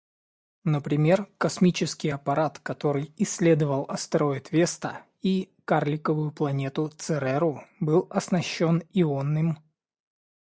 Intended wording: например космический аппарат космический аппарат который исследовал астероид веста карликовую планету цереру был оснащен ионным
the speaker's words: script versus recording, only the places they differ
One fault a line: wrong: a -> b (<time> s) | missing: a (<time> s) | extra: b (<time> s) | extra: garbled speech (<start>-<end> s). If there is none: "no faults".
missing: космический аппарат (2.6 s)
extra: и (5.2 s)